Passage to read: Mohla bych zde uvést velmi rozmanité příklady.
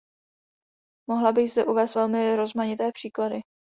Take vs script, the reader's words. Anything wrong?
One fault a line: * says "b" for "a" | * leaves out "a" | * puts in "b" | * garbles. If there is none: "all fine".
all fine